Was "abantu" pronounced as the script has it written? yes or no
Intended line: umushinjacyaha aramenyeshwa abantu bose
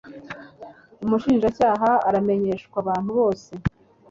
yes